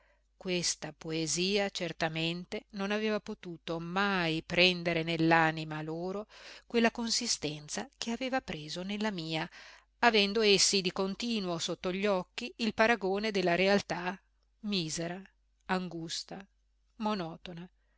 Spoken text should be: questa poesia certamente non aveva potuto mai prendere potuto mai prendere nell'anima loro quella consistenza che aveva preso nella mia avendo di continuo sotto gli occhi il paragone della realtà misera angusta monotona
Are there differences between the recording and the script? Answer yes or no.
yes